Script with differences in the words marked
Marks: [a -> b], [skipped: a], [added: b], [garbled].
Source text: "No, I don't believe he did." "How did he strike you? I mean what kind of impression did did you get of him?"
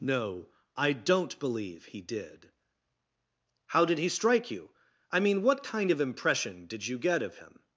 "No, I don't believe he did." "How did he strike you? I mean what kind of impression did [skipped: did] you get of him?"